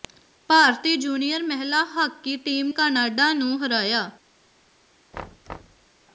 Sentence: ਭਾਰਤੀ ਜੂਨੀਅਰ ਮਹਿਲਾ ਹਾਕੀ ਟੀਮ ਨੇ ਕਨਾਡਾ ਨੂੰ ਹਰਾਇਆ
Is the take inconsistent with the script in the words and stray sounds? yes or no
yes